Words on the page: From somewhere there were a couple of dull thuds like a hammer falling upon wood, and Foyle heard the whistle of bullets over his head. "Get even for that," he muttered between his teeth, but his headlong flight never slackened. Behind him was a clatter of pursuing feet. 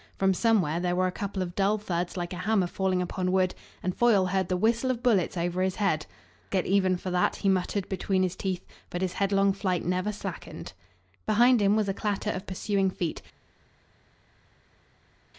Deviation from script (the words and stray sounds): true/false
false